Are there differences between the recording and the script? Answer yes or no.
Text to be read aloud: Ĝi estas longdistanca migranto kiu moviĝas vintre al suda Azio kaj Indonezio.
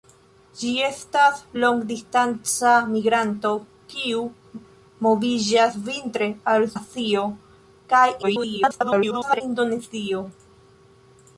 yes